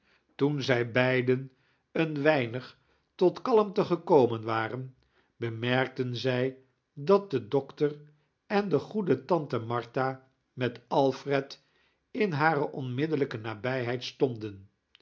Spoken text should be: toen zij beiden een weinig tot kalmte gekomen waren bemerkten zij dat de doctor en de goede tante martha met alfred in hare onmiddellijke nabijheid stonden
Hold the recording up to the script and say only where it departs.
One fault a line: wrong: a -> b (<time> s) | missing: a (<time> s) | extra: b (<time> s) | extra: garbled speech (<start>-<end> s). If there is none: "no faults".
no faults